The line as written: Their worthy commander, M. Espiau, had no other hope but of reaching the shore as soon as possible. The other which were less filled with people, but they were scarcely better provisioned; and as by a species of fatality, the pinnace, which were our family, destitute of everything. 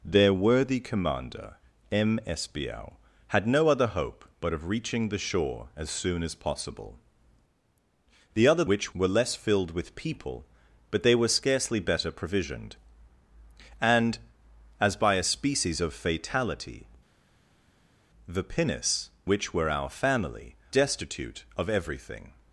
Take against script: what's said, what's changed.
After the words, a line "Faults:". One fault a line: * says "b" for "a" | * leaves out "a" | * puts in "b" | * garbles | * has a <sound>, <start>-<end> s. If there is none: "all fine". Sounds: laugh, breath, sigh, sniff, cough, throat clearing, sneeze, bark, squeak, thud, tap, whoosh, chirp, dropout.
Their worthy commander, M. Espiau, had no other hope but of reaching the shore as soon as possible. The other which were less filled with people, but they were scarcely better provisioned; and as by a species of fatality, the pinnace, which were our family, destitute of everything.
Faults:
all fine